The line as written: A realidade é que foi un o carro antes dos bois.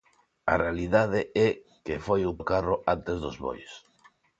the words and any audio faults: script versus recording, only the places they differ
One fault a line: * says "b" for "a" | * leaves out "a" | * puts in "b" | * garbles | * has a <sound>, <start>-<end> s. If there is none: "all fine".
all fine